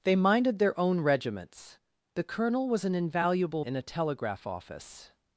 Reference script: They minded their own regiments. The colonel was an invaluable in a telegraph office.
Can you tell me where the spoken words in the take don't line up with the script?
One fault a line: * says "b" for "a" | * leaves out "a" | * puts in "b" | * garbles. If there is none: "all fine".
all fine